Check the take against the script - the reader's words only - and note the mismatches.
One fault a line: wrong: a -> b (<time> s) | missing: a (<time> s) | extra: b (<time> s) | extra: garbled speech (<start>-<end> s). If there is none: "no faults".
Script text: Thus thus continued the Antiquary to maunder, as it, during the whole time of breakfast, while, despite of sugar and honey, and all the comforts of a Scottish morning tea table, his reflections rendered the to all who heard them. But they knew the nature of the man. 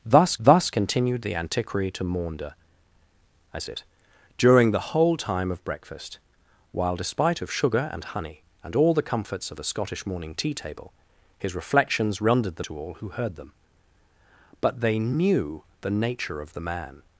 no faults